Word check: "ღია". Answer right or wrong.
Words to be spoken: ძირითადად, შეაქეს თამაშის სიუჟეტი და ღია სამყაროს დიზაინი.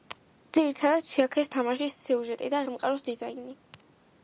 wrong